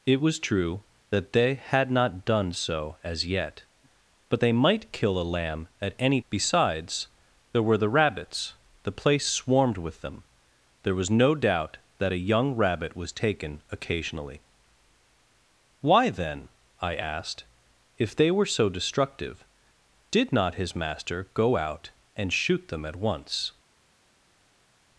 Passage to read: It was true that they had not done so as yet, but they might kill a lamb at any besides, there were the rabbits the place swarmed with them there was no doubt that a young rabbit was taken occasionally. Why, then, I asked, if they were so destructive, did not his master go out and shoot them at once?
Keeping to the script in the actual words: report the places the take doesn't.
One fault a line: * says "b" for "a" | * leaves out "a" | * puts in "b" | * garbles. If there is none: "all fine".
all fine